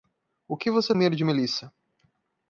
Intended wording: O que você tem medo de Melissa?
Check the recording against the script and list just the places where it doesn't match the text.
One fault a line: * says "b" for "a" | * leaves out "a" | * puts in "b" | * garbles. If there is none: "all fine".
* leaves out "tem"